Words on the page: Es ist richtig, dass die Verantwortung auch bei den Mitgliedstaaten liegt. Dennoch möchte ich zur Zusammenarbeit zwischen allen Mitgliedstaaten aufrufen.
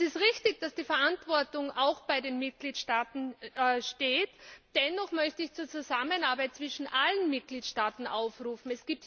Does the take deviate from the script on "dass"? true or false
false